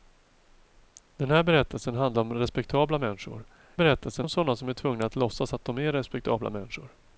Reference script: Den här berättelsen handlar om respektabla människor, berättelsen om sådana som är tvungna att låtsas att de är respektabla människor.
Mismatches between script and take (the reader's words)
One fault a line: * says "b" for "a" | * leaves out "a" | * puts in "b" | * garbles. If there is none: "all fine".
all fine